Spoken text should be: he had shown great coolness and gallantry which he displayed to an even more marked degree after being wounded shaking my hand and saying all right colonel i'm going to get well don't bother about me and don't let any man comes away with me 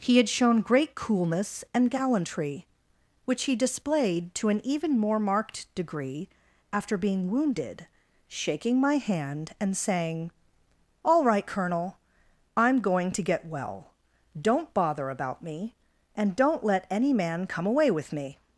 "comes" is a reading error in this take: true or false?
true